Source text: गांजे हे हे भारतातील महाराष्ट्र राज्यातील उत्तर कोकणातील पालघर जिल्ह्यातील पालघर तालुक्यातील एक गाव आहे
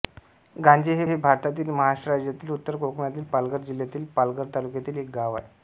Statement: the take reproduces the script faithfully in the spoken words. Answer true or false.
true